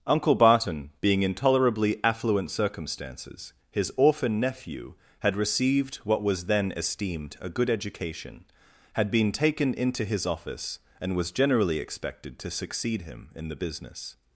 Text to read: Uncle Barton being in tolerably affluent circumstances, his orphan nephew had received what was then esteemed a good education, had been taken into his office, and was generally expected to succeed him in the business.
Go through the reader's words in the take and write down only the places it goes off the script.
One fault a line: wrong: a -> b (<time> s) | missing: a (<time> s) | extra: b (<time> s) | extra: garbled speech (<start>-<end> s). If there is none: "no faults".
no faults